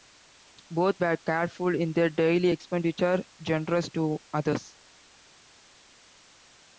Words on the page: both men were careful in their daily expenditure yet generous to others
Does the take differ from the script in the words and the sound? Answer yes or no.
yes